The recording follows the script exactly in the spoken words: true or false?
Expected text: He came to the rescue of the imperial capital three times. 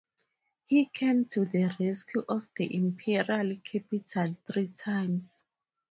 true